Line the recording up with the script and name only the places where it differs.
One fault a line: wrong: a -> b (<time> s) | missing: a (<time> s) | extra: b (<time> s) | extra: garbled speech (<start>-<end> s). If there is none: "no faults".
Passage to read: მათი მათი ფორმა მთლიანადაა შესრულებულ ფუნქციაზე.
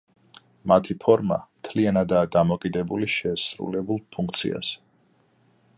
missing: მათი (0.9 s)
extra: დამოკიდებული (2.4 s)